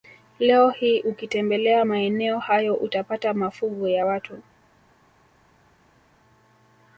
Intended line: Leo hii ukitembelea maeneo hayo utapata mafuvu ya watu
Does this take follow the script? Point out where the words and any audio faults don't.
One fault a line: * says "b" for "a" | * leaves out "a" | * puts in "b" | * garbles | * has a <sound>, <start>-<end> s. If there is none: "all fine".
all fine